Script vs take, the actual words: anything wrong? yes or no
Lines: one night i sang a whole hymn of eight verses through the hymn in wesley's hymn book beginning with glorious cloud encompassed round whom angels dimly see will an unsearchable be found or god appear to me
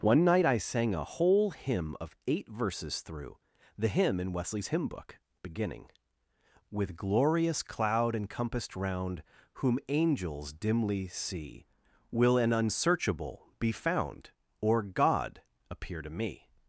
no